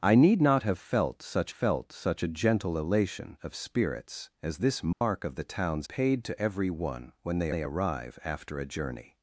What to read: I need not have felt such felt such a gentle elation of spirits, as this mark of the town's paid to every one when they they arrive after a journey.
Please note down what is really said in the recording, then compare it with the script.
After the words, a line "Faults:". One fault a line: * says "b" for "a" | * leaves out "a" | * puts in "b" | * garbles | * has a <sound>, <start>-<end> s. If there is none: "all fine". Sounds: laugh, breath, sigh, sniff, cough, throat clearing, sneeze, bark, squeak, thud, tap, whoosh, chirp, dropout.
I need not have felt such felt such a gentle elation of spirits, as this mark of the town's paid to every one when they they arrive after a journey.
Faults:
* has a dropout, 4.9-5.0 s